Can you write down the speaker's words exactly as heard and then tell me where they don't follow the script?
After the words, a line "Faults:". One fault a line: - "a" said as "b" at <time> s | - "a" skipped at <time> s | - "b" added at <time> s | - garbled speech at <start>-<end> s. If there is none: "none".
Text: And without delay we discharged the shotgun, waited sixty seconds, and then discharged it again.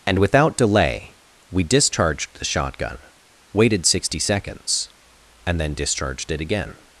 And without delay we discharged the shotgun, waited sixty seconds, and then discharged it again.
Faults:
none